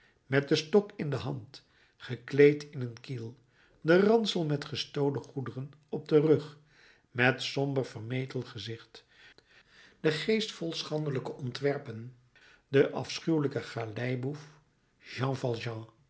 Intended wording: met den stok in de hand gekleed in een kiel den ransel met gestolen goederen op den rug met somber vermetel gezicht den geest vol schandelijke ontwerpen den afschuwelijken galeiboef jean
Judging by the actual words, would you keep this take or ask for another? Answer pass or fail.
pass